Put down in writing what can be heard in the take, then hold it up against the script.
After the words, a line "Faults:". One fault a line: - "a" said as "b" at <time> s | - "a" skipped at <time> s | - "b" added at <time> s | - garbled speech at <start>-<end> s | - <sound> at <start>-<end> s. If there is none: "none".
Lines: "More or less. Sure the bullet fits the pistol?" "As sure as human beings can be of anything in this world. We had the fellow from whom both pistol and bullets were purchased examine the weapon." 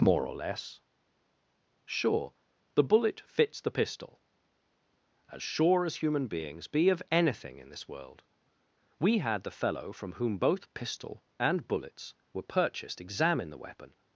"More or less. Sure the bullet fits the pistol?" "As sure as human beings be of anything in this world. We had the fellow from whom both pistol and bullets were purchased examine the weapon."
Faults:
- "can" skipped at 6.7 s